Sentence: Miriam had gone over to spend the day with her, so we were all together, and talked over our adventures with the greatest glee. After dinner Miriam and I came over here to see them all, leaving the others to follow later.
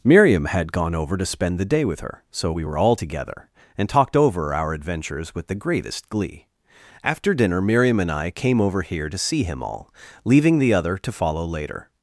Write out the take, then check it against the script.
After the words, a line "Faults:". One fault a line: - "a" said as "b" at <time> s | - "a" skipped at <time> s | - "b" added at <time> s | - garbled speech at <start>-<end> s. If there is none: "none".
Miriam had gone over to spend the day with her, so we were all together, and talked over our adventures with the greatest glee. After dinner Miriam and I came over here to see him all, leaving the other to follow later.
Faults:
- "them" said as "him" at 9.4 s
- "others" said as "other" at 10.7 s